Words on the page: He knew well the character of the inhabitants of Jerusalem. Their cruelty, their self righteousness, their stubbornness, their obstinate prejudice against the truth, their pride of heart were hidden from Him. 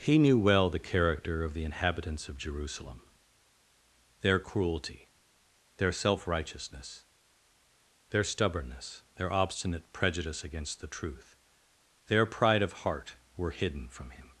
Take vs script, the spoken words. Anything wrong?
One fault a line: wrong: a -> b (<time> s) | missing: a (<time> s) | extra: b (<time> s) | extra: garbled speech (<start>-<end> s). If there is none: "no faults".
no faults